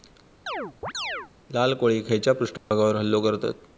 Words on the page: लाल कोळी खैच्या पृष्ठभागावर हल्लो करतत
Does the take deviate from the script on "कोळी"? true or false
false